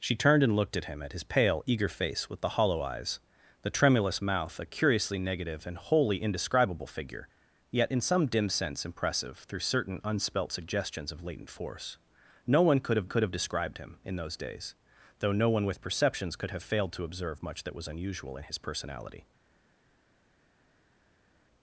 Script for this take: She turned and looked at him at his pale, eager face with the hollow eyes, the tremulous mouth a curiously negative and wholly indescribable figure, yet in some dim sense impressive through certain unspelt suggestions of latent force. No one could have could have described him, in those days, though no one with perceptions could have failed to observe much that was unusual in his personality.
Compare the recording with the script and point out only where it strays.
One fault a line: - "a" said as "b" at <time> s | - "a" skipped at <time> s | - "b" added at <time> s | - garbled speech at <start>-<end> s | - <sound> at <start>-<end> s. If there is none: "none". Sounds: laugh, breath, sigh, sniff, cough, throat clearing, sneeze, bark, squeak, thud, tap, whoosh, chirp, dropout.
none